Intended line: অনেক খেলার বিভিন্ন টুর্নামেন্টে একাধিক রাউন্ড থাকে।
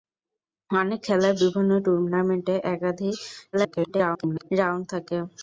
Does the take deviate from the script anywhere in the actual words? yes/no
yes